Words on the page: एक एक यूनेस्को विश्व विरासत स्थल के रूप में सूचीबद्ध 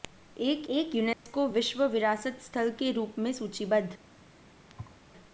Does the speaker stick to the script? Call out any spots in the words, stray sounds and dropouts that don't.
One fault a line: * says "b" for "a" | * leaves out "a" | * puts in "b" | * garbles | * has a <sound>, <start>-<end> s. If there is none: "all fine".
* has a dropout, 1.1-1.3 s
* has a thud, 4.7-5.0 s